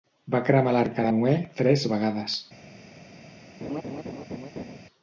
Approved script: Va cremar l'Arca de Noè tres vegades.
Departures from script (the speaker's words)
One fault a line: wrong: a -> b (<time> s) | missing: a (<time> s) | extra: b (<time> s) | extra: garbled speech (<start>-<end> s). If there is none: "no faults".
no faults